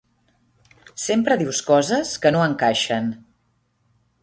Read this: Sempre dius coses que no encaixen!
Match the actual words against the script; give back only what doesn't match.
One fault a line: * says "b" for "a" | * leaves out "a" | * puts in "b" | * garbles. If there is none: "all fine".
all fine